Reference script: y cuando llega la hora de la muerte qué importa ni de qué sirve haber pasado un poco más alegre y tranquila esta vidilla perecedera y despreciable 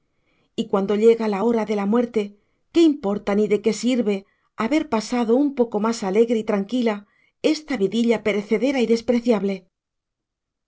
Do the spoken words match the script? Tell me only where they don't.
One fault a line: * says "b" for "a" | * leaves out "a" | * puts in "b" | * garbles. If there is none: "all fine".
all fine